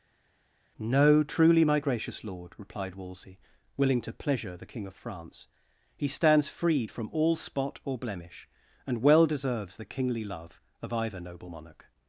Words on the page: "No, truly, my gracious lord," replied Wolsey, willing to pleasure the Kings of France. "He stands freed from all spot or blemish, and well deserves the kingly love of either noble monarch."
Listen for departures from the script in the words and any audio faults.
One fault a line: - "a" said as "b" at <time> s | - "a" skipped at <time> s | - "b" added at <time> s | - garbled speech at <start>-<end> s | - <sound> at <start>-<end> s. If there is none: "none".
- "Kings" said as "King" at 4.6 s